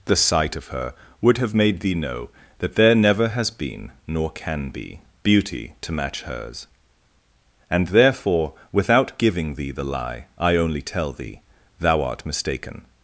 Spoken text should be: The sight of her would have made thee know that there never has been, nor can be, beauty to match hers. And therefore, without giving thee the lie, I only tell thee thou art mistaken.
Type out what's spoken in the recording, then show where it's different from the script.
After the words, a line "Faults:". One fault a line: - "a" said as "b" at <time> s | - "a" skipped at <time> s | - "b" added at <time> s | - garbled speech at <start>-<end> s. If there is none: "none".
The sight of her would have made thee know that there never has been, nor can be, beauty to match hers. And therefore, without giving thee the lie, I only tell thee thou art mistaken.
Faults:
none